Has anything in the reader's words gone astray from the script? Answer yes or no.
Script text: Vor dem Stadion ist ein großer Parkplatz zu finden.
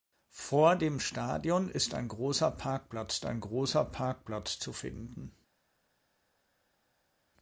yes